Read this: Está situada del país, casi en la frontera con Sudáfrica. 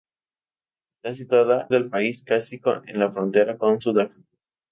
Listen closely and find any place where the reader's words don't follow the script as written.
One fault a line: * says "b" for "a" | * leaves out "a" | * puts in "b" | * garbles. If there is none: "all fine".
all fine